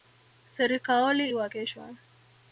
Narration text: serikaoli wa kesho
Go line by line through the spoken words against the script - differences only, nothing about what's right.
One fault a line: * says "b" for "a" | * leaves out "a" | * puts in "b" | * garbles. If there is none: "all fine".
all fine